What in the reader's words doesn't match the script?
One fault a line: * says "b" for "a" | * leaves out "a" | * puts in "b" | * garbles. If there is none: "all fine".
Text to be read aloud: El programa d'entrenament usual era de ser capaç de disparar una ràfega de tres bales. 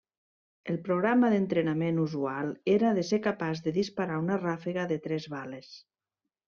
all fine